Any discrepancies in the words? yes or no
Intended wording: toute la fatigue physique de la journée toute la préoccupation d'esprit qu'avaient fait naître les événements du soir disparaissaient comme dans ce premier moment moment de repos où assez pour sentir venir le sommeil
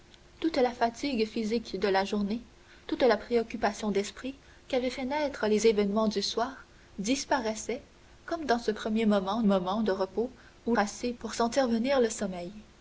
no